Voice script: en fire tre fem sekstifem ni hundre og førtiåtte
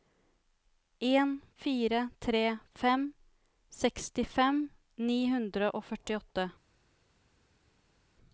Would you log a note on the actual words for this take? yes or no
no